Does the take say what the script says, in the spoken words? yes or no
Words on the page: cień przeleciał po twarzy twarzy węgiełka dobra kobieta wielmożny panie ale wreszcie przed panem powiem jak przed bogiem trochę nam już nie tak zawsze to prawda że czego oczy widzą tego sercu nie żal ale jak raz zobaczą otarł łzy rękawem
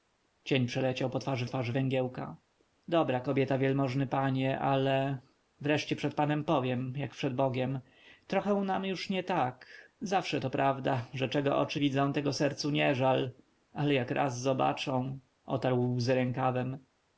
yes